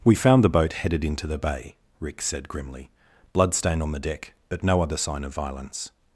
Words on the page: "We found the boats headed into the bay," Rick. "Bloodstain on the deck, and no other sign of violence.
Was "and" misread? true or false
true